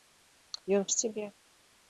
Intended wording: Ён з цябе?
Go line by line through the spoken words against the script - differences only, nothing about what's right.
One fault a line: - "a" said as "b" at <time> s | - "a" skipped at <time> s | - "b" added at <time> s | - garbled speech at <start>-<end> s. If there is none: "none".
none